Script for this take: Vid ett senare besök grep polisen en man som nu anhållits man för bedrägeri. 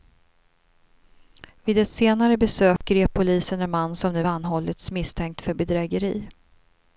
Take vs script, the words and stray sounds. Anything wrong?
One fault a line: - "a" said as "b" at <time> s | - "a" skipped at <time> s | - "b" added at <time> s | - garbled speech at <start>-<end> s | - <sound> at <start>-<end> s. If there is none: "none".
- dropout at 2.8-2.8 s
- "man" said as "misstänkt" at 4.9 s